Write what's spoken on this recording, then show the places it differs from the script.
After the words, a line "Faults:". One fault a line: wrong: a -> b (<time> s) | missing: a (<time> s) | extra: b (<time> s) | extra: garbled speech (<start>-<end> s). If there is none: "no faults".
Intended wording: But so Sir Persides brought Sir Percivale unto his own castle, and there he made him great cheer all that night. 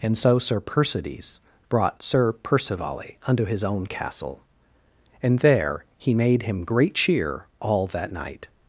And so Sir Persides brought Sir Percivale unto his own castle, and there he made him great cheer all that night.
Faults:
wrong: But -> And (0.0 s)